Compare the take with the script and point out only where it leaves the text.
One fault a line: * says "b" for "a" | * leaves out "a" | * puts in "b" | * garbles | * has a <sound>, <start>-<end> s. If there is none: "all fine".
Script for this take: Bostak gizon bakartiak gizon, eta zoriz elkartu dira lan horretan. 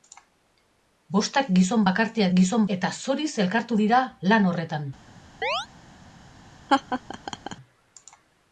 * has a chirp, 5.4-5.7 s
* has a laugh, 6.7-7.6 s